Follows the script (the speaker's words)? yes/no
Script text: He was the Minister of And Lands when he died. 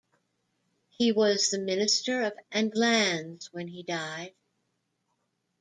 yes